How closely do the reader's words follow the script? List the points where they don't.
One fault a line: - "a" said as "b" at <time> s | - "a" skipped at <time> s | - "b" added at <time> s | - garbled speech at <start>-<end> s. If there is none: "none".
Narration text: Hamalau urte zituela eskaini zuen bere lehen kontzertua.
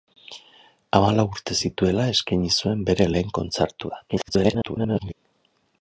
- garbled speech at 4.1-5.1 s